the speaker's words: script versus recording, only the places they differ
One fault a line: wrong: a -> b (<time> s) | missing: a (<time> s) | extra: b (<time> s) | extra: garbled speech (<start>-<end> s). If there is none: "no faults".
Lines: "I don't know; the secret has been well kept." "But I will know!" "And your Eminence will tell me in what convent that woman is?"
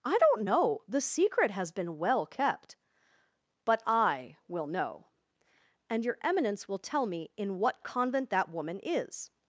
no faults